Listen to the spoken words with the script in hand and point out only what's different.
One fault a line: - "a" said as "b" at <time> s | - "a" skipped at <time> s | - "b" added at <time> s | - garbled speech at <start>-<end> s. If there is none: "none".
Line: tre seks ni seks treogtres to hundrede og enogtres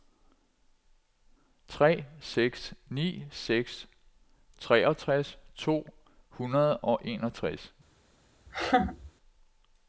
none